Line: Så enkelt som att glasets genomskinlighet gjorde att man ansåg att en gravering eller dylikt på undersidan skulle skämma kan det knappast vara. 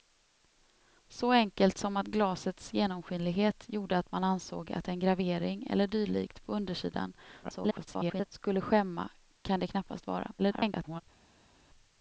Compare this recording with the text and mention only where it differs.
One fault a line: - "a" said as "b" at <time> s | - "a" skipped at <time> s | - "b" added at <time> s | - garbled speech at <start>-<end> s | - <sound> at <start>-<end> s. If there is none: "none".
- garbled speech at 7.4-8.3 s
- garbled speech at 10.4-11.0 s